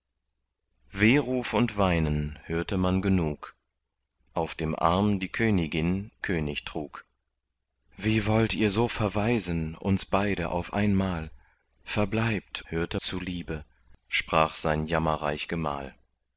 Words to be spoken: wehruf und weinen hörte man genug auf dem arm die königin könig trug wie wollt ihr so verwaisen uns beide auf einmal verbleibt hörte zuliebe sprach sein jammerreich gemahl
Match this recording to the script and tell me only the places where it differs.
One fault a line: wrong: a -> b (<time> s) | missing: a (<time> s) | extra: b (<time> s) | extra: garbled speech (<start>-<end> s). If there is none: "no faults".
no faults